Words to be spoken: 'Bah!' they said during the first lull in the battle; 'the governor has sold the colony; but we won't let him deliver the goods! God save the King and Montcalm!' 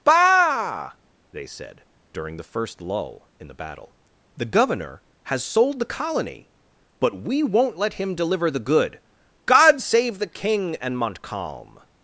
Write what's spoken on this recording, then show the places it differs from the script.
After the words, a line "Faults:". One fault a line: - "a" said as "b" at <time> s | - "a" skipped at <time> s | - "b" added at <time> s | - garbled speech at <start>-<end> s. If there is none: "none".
'Bah!' they said during the first lull in the battle; 'the governor has sold the colony; but we won't let him deliver the good! God save the King and Montcalm!'
Faults:
- "goods" said as "good" at 8.6 s